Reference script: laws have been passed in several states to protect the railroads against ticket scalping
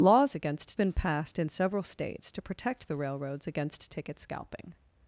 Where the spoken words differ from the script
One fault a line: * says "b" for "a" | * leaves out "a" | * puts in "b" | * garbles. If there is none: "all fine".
* says "against" for "have"